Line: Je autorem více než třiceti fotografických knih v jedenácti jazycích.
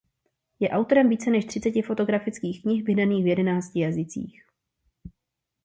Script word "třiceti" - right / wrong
right